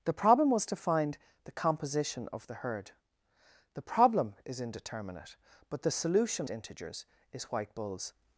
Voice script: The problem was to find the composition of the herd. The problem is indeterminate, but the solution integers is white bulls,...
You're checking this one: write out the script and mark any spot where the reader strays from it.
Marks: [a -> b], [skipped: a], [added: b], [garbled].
The problem was to find the composition of the herd. The problem is indeterminate, but the solution integers is white bulls,...